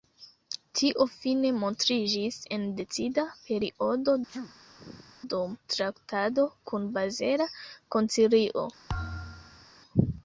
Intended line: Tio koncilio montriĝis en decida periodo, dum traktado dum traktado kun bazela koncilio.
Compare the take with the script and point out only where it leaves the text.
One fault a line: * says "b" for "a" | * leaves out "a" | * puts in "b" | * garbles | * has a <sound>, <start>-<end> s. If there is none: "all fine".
* says "fine" for "koncilio"
* has a sneeze, 4.3-5.1 s
* leaves out "dum traktado"
* has a thud, 8.9-9.7 s